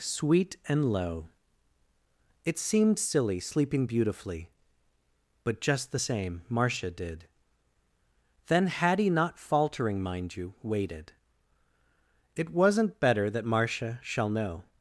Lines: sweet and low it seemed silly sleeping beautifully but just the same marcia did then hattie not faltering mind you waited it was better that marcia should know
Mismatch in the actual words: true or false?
true